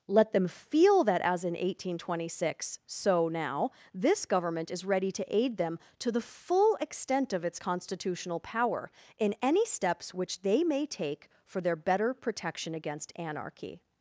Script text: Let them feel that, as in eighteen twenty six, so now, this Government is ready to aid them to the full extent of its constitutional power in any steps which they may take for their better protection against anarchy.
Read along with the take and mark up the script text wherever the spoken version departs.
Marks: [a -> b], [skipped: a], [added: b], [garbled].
Let them feel that, as in eighteen twenty six, so now, this Government is ready to aid them to the full extent of its constitutional power in any steps which they may take for their better protection against anarchy.